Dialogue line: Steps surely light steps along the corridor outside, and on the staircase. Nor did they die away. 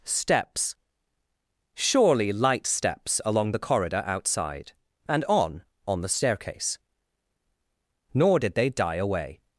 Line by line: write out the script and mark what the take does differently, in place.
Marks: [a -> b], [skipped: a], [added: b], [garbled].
Steps surely light steps along the corridor outside, and on [added: on] the staircase. Nor did they die away.